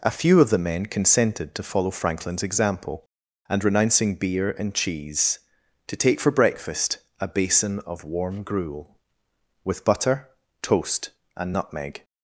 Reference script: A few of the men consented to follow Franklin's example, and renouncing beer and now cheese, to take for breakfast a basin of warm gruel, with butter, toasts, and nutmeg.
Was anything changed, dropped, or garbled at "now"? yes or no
yes